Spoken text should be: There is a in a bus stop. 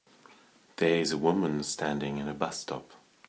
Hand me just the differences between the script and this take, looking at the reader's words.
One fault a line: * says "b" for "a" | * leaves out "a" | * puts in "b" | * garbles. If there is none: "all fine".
* puts in "woman standing"